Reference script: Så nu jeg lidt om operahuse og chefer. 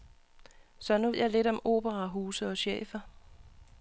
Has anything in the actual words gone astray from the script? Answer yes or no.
no